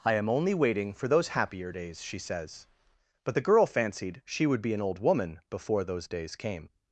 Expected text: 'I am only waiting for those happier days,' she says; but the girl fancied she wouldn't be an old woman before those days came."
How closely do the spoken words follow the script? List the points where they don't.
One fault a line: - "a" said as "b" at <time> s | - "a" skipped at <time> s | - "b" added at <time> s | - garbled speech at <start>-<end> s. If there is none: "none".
- "wouldn't" said as "would" at 4.5 s